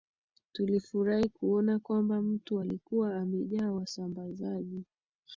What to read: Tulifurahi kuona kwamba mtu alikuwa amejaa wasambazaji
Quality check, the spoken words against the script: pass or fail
pass